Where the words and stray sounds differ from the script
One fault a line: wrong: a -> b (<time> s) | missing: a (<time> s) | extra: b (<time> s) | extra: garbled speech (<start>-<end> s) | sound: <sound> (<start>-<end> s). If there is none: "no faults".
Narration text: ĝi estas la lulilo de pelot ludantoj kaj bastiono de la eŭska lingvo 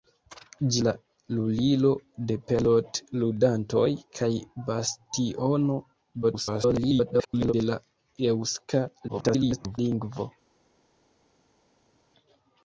missing: estas (0.8 s)
extra: garbled speech (6.2-7.5 s)
extra: garbled speech (9.1-9.8 s)